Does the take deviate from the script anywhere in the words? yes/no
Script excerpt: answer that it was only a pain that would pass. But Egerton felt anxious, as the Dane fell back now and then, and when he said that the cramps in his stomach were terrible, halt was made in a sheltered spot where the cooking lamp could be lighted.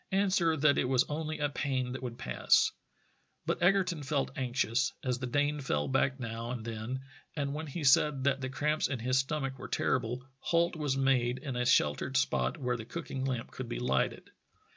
no